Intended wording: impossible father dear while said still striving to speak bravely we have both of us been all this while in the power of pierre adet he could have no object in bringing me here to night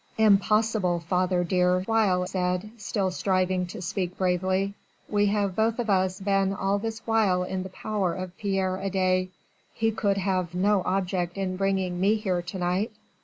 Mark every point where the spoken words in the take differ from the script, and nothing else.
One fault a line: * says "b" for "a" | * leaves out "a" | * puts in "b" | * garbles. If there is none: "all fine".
all fine